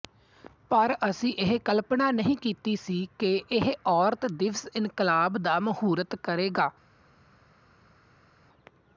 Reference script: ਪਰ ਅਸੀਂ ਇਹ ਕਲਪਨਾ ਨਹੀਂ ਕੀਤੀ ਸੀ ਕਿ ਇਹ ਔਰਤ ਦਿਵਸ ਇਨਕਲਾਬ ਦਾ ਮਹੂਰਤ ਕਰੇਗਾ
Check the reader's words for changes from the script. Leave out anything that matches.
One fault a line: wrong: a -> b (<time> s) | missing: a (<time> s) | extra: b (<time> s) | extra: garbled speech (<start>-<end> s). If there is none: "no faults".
no faults